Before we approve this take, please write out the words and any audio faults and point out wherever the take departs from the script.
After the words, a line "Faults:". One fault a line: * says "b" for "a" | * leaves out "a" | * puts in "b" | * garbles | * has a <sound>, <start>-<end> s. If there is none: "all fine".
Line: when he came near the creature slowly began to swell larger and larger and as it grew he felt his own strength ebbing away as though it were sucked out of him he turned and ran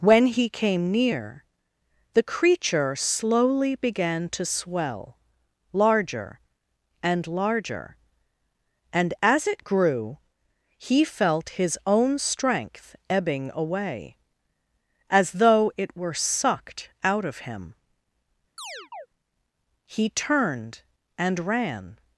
when he came near the creature slowly began to swell larger and larger and as it grew he felt his own strength ebbing away as though it were sucked out of him he turned and ran
Faults:
* has a chirp, 18.6-19.1 s